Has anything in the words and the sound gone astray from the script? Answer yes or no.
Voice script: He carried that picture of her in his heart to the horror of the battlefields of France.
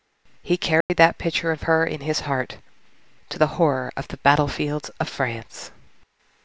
yes